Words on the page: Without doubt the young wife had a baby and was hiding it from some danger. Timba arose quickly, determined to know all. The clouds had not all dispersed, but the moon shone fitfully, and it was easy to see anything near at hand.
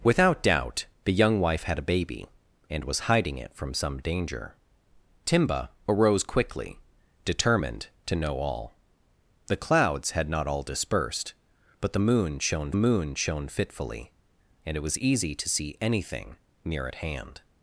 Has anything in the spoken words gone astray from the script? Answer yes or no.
yes